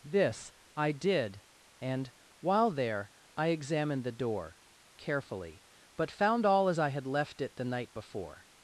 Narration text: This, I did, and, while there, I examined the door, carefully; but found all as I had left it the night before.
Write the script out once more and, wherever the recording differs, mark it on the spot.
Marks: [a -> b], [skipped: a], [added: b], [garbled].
This, I did, and, while there, I examined the door, carefully; but found all as I had left it the night before.